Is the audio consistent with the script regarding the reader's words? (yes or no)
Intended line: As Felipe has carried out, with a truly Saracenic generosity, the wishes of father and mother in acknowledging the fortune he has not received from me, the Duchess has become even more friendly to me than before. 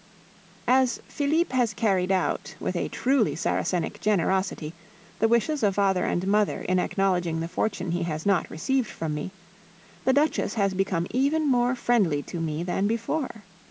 yes